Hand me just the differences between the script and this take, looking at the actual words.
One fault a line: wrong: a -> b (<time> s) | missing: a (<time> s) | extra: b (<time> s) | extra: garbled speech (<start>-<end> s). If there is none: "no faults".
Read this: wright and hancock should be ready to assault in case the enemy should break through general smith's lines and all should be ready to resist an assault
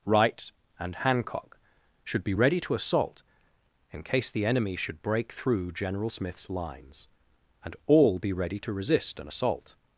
missing: should (8.2 s)